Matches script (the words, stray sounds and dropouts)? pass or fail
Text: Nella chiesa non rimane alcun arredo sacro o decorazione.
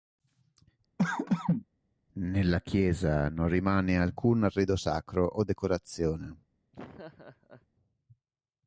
fail